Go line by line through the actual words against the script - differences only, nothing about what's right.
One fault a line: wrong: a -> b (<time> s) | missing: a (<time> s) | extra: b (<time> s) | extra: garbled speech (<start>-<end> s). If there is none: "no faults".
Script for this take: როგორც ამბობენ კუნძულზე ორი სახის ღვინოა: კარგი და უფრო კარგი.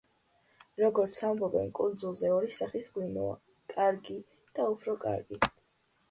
no faults